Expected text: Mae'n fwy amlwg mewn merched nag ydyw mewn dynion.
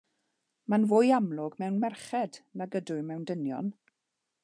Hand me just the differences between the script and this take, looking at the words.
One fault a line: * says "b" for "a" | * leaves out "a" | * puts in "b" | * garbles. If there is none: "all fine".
all fine